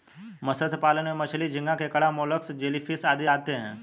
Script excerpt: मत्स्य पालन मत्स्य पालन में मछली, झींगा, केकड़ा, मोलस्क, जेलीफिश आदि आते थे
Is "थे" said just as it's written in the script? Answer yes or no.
no